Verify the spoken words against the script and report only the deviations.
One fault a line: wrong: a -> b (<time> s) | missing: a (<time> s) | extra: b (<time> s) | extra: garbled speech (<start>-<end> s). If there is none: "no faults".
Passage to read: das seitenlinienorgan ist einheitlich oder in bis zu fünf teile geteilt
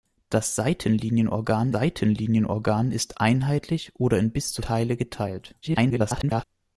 extra: seitenlinienorgan (1.7 s)
missing: fünf (4.6 s)
extra: garbled speech (5.6-6.4 s)